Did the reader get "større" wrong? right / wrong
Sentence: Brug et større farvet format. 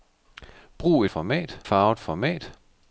wrong